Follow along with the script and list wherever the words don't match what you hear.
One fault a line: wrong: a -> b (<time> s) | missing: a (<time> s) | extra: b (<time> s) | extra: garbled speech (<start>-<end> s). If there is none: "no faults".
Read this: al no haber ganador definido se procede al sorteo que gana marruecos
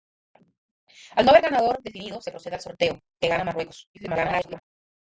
extra: garbled speech (3.9-4.6 s)